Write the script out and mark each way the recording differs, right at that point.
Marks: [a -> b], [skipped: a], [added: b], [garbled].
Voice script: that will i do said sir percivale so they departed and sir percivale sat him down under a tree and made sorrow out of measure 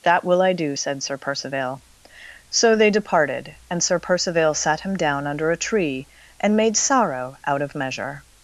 that will i do said sir percivale so they departed and sir percivale sat him down under a tree and made sorrow out of measure